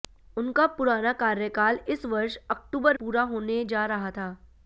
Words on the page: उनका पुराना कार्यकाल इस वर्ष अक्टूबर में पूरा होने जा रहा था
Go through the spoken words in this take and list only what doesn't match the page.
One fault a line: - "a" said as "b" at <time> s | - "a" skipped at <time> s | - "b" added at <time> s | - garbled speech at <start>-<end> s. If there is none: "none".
- "में" skipped at 3.0 s